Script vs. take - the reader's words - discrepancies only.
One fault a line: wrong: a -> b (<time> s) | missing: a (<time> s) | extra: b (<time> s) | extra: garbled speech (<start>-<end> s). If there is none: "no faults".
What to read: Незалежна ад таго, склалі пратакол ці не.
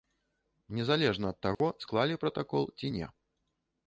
no faults